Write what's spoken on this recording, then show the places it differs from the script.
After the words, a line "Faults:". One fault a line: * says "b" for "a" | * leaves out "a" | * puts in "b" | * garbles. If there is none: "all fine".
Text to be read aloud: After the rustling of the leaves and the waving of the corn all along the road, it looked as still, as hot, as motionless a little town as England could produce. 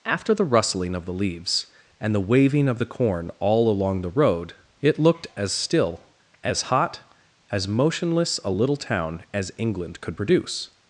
After the rustling of the leaves and the waving of the corn all along the road, it looked as still, as hot, as motionless a little town as England could produce.
Faults:
all fine